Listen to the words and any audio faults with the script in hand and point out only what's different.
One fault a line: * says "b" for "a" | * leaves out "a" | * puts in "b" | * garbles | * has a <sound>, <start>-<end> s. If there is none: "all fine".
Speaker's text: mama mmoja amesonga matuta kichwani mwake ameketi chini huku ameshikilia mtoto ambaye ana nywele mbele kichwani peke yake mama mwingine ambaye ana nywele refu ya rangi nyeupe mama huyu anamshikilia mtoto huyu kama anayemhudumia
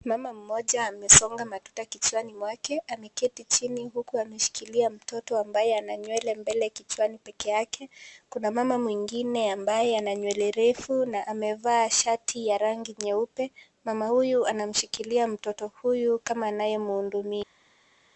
* puts in "kuna"
* puts in "na amevaa shati"